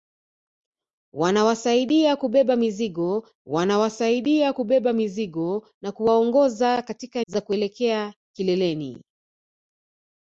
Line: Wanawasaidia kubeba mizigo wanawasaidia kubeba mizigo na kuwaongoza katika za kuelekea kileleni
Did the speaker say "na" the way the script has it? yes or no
yes